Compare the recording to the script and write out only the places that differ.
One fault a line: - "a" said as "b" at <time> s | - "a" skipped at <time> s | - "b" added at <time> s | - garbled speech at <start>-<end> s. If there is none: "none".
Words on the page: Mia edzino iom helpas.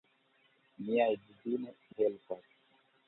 - "iom" skipped at 1.8 s